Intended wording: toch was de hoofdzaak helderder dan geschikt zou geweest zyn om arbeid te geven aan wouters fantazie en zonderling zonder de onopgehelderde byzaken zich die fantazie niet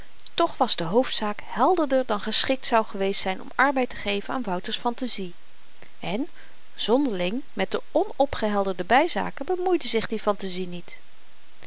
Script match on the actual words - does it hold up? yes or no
no